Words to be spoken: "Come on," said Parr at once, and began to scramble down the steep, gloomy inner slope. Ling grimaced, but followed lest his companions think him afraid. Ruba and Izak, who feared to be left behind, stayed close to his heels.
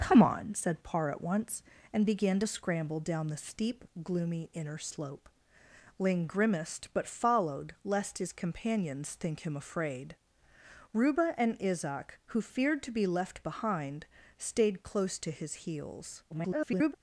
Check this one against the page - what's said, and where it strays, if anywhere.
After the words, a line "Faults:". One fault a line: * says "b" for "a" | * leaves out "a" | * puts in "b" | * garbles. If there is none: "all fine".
"Come on," said Parr at once, and began to scramble down the steep, gloomy inner slope. Ling grimaced, but followed lest his companions think him afraid. Ruba and Izak, who feared to be left behind, stayed close to his heels. [garbled]
Faults:
* garbles